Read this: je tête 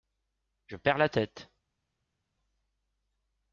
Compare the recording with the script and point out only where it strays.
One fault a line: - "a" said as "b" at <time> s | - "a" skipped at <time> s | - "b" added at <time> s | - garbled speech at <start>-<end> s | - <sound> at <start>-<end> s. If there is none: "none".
- "perds la" added at 0.8 s